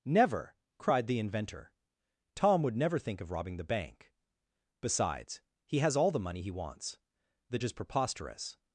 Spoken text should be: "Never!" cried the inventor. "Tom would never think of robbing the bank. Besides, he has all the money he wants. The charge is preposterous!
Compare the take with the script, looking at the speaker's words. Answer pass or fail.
fail